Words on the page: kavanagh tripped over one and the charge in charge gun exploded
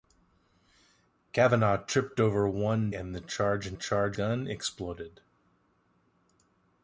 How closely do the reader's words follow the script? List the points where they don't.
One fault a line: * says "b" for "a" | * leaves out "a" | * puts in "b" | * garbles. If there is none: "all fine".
all fine